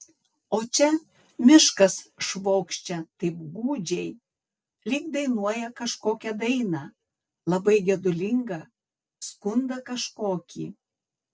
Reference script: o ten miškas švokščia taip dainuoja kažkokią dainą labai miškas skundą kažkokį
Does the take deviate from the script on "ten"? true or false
true